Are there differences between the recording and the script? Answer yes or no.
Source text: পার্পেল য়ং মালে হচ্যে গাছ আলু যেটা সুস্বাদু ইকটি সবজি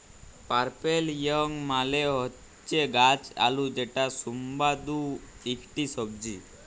no